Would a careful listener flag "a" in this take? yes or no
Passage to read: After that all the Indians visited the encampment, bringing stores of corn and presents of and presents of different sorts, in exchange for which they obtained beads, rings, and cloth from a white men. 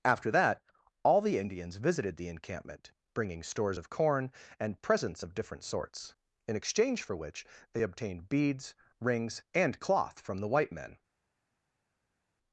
yes